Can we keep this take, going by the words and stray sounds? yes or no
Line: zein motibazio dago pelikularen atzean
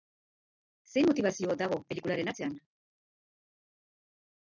yes